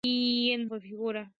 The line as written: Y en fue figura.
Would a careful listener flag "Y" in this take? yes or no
no